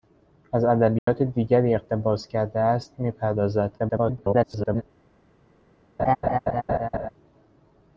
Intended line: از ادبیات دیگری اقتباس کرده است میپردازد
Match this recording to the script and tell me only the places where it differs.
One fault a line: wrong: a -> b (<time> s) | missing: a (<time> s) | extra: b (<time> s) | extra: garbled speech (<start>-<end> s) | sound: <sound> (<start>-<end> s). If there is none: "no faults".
sound: dropout (1.0-1.1 s)
extra: garbled speech (3.8-4.8 s)
sound: laugh (6.0-7.1 s)